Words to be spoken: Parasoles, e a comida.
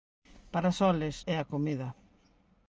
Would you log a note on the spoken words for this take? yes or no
no